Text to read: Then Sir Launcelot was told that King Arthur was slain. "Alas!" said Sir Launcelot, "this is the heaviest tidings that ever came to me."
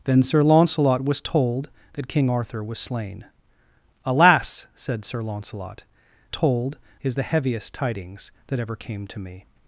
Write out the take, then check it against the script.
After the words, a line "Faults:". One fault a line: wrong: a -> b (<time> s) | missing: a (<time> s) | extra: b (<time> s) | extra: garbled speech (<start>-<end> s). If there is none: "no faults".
Then Sir Launcelot was told that King Arthur was slain. "Alas!" said Sir Launcelot, "told is the heaviest tidings that ever came to me."
Faults:
wrong: this -> told (6.3 s)